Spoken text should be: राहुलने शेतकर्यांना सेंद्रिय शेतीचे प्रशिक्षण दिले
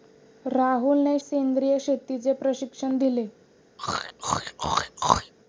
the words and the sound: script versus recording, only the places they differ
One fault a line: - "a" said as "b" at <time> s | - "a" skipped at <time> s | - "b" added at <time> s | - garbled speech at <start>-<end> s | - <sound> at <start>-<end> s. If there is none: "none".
- "शेतकर्यांना" skipped at 1.2 s
- throat clearing at 3.8-5.3 s